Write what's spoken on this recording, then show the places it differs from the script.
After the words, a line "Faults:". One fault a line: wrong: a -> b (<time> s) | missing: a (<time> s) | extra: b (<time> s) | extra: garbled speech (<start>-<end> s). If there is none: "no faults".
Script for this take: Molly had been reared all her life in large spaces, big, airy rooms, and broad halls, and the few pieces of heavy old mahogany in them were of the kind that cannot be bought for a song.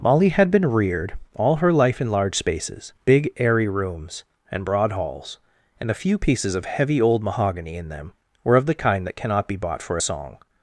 Molly had been reared all her life in large spaces, big, airy rooms, and broad halls, and a few pieces of heavy old mahogany in them were of the kind that cannot be bought for a song.
Faults:
wrong: the -> a (5.9 s)